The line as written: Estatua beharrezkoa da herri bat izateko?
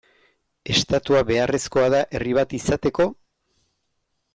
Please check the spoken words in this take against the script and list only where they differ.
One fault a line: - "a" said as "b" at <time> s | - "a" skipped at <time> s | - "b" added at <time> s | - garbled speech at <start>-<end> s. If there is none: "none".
none